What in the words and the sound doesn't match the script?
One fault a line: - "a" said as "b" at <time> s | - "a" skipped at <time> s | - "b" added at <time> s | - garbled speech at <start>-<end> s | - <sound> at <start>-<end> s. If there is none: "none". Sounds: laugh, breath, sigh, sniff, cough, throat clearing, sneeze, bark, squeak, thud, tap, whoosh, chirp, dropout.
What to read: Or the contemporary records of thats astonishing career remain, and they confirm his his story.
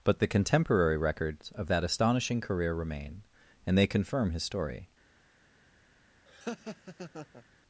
- "Or" said as "But" at 0.0 s
- "thats" said as "that" at 1.7 s
- "his" skipped at 4.4 s
- laugh at 6.3-7.4 s